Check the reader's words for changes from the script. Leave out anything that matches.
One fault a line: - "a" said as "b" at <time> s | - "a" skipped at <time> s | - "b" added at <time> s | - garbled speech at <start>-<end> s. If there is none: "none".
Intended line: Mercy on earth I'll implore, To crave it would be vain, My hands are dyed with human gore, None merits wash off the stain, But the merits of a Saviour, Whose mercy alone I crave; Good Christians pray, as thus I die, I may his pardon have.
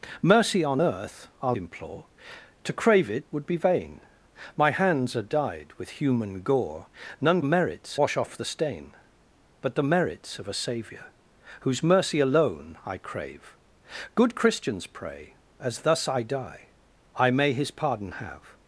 none